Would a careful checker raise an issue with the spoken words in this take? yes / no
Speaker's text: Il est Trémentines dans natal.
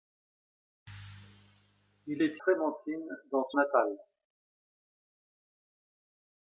no